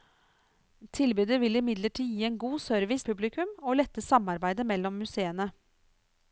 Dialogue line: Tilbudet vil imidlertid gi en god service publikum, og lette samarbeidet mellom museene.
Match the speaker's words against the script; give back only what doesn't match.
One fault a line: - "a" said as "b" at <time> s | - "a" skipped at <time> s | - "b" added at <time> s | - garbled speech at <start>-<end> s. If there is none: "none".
none